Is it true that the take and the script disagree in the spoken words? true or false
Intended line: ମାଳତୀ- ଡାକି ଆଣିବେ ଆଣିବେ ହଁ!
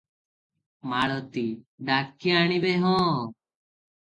true